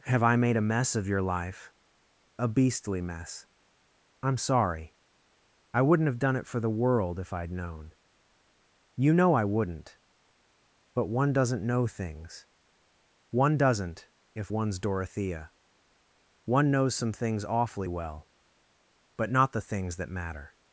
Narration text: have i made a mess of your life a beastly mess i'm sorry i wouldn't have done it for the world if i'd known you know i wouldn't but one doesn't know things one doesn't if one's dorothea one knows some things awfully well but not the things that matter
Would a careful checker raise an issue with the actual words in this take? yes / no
no